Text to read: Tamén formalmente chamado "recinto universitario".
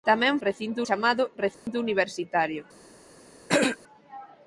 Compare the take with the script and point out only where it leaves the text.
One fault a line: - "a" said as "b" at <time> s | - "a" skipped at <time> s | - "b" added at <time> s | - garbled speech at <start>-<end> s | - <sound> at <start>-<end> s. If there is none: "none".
- "formalmente" said as "recinto" at 0.5 s
- dropout at 1.5-1.7 s
- throat clearing at 3.5-3.8 s